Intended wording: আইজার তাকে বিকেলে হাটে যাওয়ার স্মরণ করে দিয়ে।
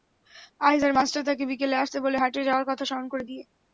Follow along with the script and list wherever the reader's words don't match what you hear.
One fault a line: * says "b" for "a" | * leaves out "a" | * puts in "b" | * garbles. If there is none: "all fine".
* puts in "মাস্টার"
* puts in "আসতে বলে"
* puts in "কথা"